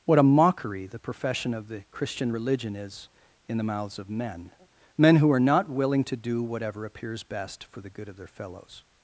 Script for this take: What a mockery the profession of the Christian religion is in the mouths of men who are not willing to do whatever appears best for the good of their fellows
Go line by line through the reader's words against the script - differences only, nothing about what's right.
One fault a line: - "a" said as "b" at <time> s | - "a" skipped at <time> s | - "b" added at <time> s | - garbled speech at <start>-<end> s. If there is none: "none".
- "men" added at 5.0 s